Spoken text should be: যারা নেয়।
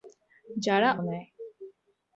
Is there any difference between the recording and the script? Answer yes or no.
no